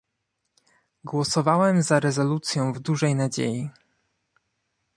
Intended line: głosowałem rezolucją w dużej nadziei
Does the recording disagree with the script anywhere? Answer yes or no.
yes